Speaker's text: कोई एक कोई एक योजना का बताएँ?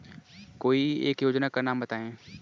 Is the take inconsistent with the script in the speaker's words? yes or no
yes